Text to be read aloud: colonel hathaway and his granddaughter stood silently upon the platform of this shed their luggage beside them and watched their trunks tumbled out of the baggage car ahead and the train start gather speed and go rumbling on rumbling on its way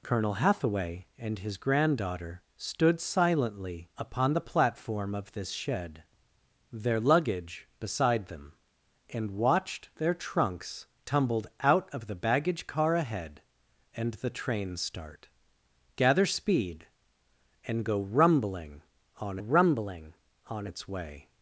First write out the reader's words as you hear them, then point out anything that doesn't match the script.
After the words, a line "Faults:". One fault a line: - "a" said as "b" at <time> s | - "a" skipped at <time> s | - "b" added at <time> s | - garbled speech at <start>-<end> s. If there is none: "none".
colonel hathaway and his granddaughter stood silently upon the platform of this shed their luggage beside them and watched their trunks tumbled out of the baggage car ahead and the train start gather speed and go rumbling on rumbling on its way
Faults:
none